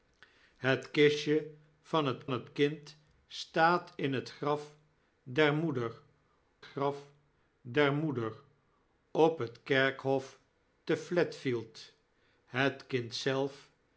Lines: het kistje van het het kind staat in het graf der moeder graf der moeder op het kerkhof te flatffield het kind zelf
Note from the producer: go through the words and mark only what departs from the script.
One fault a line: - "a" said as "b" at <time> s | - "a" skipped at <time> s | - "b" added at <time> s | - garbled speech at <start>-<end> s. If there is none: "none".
none